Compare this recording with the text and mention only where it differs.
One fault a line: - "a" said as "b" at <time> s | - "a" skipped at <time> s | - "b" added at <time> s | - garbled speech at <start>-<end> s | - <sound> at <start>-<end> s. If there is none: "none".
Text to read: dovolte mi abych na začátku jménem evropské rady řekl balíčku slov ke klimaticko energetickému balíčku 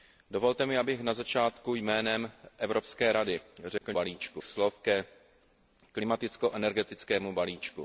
- dropout at 3.8-3.8 s